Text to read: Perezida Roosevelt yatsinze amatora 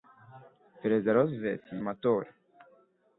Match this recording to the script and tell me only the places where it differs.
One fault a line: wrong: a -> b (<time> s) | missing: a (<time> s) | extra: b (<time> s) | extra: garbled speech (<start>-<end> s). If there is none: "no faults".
missing: yatsinze (1.6 s)